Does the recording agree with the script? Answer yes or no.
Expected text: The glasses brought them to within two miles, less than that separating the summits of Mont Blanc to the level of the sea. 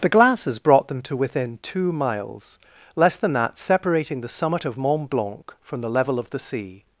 no